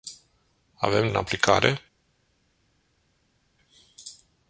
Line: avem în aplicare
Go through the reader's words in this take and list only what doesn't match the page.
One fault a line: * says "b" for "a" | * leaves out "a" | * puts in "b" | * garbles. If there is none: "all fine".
all fine